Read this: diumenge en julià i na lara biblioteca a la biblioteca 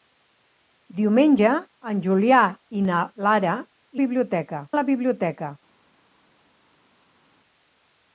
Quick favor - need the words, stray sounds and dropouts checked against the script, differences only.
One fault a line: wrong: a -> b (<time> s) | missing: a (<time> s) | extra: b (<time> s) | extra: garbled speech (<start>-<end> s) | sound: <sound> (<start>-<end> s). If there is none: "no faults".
no faults